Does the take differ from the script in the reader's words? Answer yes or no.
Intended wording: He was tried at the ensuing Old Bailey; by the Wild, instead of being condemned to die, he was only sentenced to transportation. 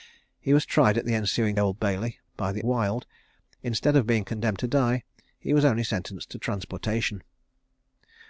no